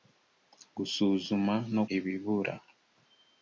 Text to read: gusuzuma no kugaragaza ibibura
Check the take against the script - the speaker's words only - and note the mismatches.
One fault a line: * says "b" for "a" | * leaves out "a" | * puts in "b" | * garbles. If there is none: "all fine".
* leaves out "kugaragaza"